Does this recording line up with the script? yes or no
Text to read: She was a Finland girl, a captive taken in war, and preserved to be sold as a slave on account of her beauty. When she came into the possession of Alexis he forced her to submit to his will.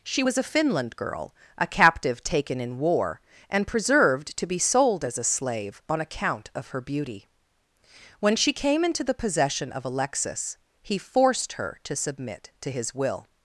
yes